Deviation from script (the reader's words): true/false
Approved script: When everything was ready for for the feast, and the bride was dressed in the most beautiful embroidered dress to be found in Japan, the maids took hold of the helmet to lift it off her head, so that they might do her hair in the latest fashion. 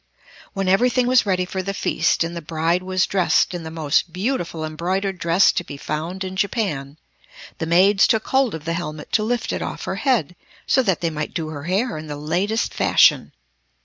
true